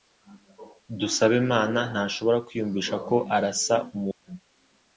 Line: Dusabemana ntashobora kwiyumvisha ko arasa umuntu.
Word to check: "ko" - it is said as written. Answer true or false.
true